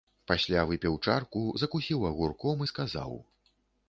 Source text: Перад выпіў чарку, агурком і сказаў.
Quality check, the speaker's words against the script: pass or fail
fail